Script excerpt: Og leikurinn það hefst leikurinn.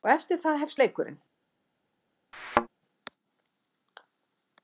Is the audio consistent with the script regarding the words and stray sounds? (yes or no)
no